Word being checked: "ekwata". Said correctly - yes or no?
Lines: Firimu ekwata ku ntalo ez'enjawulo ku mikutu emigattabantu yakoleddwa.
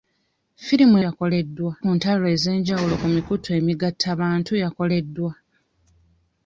no